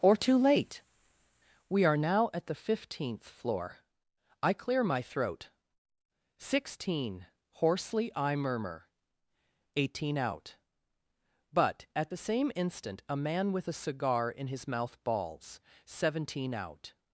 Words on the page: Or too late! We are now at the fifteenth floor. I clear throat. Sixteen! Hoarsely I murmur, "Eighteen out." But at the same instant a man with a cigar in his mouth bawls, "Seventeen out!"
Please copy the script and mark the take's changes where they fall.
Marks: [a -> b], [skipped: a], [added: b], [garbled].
Or too late! We are now at the fifteenth floor. I clear [added: my] throat. Sixteen! Hoarsely I murmur, "Eighteen out." But at the same instant a man with a cigar in his mouth bawls, "Seventeen out!"